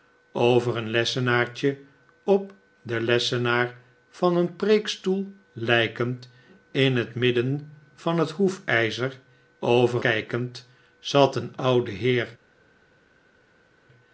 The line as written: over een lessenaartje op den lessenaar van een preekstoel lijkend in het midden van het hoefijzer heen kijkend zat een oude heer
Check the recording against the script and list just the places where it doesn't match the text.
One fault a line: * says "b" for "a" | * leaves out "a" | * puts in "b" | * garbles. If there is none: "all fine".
* says "over" for "heen"